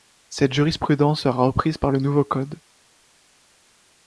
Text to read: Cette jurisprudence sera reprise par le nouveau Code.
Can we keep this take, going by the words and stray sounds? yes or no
yes